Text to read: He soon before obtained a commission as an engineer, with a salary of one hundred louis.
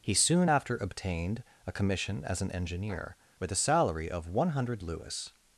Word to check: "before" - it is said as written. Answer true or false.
false